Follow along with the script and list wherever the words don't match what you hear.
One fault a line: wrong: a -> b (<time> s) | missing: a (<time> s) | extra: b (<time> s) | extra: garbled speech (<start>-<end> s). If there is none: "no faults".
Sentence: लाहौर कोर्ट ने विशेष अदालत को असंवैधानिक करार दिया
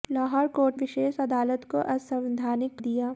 missing: ने (0.8 s)
missing: करार (2.8 s)